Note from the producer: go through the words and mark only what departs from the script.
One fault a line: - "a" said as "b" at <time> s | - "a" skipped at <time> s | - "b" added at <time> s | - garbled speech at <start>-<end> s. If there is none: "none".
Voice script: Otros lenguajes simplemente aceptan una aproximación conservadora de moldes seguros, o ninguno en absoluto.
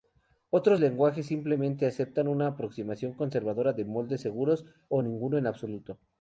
none